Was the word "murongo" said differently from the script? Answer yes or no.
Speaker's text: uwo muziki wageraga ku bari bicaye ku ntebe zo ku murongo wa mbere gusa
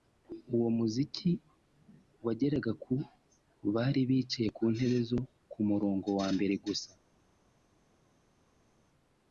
no